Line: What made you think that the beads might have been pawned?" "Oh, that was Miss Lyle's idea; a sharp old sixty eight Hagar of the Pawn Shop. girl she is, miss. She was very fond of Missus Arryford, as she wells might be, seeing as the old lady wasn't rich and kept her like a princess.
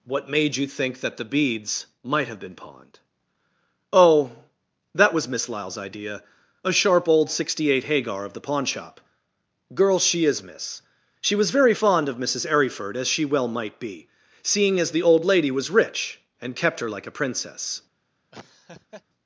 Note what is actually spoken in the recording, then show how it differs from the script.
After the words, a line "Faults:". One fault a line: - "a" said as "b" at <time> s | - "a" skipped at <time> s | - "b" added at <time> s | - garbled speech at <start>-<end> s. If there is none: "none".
What made you think that the beads might have been pawned?" "Oh, that was Miss Lyle's idea; a sharp old sixty eight Hagar of the Pawn Shop. girl she is, miss. She was very fond of Missus Arryford, as she well might be, seeing as the old lady was rich and kept her like a princess.
Faults:
- "wells" said as "well" at 13.2 s
- "wasn't" said as "was" at 15.5 s